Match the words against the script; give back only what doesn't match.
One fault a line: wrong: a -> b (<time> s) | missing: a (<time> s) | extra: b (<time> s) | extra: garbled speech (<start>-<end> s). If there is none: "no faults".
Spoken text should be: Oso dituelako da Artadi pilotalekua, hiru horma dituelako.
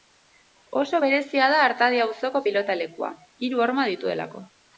wrong: dituelako -> berezia (1.0 s)
extra: auzoko (2.0 s)